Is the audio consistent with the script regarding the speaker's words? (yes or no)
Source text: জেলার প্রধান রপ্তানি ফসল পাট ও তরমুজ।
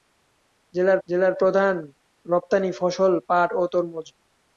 no